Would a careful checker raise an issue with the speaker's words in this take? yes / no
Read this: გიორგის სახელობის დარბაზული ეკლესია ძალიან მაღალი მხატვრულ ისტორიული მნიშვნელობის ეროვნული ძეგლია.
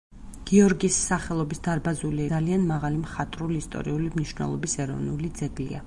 yes